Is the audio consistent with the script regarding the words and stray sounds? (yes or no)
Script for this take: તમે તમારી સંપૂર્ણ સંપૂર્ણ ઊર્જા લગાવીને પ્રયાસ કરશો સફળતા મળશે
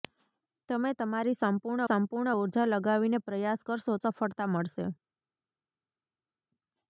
yes